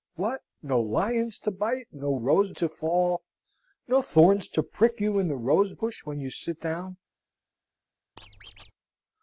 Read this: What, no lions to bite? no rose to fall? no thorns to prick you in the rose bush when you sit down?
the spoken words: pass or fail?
pass